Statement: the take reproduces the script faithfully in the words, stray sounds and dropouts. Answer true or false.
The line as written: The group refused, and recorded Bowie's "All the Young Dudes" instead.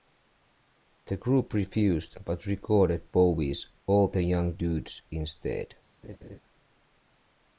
false